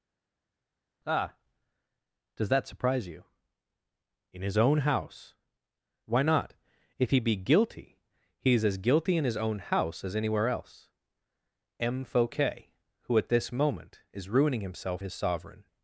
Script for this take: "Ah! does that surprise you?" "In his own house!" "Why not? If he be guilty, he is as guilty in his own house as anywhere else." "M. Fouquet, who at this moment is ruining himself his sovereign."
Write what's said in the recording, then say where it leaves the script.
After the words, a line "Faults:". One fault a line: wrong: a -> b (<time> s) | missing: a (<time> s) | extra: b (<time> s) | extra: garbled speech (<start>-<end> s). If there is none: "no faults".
"Ah! does that surprise you?" "In his own house!" "Why not? If he be guilty, he is as guilty in his own house as anywhere else." "M. Fouquet, who at this moment is ruining himself his sovereign."
Faults:
no faults